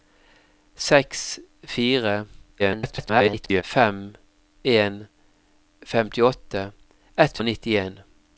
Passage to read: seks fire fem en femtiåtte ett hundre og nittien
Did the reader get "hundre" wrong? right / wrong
wrong